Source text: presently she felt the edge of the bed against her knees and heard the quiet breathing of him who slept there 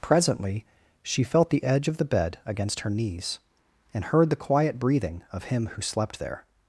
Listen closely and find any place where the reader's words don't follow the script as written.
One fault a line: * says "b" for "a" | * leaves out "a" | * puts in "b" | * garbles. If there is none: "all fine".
all fine